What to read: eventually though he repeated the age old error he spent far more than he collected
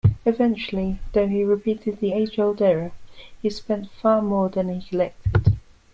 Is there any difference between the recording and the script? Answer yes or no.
no